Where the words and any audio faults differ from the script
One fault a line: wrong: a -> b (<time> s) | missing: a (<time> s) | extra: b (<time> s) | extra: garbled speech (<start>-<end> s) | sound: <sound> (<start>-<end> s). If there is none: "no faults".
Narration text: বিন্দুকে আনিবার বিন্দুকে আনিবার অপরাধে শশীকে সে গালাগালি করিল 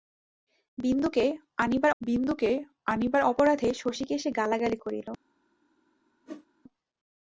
sound: whoosh (6.3-6.5 s)